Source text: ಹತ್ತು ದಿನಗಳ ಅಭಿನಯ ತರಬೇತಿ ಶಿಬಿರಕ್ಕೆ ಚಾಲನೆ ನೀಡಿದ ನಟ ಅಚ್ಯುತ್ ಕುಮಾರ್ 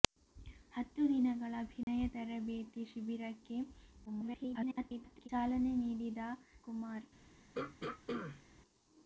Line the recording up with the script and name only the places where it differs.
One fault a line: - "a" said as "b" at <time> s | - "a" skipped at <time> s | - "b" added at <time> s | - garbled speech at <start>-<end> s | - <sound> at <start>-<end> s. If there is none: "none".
- dropout at 1.8-1.9 s
- garbled speech at 4.1-5.3 s
- "ನಟ ಅಚ್ಯುತ್" skipped at 6.2 s
- throat clearing at 7.5-8.4 s